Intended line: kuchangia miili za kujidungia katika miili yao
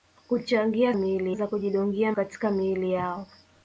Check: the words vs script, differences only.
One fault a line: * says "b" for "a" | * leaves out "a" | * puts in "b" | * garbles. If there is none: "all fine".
all fine